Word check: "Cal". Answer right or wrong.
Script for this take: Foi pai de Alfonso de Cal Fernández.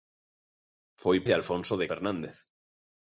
wrong